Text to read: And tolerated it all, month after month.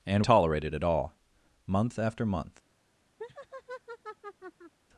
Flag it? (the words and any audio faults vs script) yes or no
yes